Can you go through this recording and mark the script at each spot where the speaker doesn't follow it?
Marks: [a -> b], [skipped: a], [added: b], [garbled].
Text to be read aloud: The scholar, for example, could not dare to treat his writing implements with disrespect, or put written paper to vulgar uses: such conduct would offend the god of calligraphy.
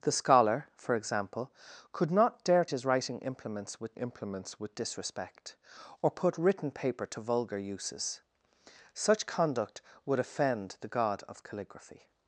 The scholar, for example, could not dare [to treat his writing -> his writing implements with] implements with disrespect, or put written paper to vulgar uses: such conduct would offend the god of calligraphy.